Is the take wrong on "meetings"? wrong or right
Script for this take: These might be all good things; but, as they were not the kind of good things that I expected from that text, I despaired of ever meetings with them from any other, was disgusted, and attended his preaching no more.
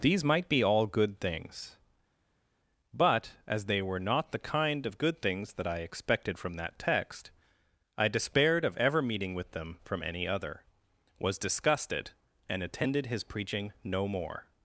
wrong